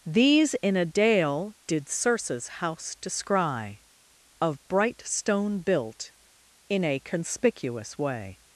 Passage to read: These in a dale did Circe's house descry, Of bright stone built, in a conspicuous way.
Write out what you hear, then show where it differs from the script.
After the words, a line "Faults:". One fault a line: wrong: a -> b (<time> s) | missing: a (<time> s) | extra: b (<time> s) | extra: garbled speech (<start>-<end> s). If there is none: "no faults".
These in a dale did Circe's house descry, Of bright stone built, in a conspicuous way.
Faults:
no faults